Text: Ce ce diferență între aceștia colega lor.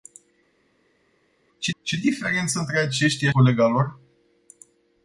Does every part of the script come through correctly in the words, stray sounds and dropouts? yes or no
yes